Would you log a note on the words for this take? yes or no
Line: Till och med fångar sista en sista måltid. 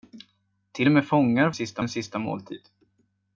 no